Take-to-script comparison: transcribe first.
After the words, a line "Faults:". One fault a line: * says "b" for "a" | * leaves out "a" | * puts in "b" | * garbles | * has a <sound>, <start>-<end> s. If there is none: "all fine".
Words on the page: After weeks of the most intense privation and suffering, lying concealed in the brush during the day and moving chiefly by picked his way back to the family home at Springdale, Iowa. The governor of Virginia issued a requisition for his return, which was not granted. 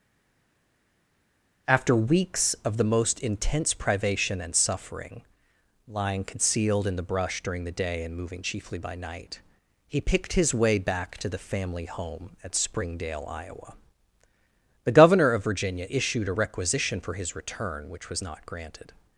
After weeks of the most intense privation and suffering, lying concealed in the brush during the day and moving chiefly by night, he picked his way back to the family home at Springdale, Iowa. The governor of Virginia issued a requisition for his return, which was not granted.
Faults:
* puts in "night he"